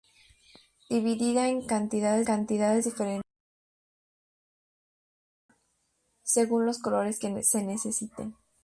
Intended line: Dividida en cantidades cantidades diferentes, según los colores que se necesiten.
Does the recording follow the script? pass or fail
pass